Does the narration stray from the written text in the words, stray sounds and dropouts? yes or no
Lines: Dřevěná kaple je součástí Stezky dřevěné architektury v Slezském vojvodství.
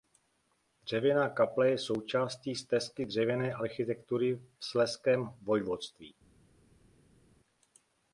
no